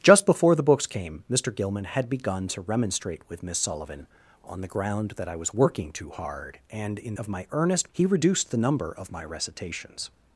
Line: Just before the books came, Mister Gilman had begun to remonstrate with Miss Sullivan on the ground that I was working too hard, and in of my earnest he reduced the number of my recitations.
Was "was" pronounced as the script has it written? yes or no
yes